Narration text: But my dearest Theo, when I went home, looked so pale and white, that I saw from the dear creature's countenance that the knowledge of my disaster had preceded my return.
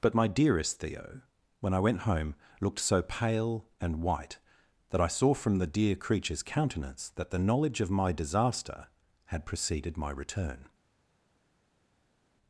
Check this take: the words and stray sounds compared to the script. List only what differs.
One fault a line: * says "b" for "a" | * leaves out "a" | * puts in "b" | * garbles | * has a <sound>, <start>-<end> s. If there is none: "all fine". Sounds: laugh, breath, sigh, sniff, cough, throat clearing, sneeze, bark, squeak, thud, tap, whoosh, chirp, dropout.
all fine